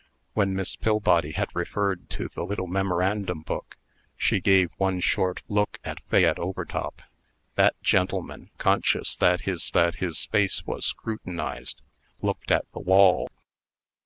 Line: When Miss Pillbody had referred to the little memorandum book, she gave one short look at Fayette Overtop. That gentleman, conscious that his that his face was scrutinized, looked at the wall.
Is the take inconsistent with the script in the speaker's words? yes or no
no